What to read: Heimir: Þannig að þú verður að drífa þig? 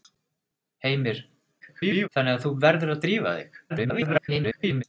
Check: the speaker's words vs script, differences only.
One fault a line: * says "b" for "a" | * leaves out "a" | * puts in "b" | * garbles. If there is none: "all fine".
* garbles
* garbles